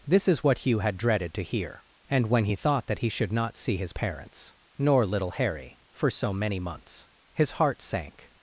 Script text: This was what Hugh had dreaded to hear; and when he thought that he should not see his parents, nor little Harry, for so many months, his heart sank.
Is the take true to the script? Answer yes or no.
no